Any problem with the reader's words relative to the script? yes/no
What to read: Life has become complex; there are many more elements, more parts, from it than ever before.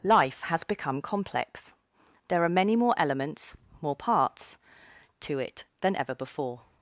yes